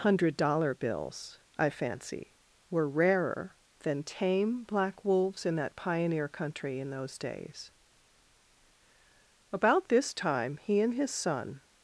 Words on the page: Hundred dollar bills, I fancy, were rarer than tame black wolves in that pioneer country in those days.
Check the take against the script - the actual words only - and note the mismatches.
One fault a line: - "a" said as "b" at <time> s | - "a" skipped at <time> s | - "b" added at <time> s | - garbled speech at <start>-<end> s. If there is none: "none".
- "About this time he and his son" added at 9.5 s